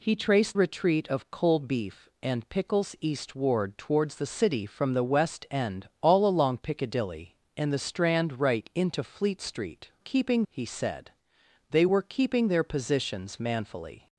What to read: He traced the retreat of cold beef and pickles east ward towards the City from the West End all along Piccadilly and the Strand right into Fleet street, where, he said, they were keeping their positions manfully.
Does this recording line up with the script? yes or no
no